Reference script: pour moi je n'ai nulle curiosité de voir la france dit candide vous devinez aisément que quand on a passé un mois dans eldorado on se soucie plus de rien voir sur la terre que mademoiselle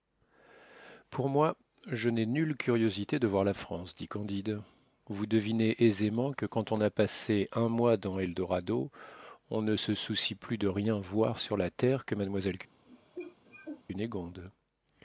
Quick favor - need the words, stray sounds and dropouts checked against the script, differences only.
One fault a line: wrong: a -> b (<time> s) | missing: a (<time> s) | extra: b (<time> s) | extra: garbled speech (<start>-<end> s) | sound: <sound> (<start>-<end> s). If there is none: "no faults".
extra: ne (9.6 s)
sound: cough (12.9-13.8 s)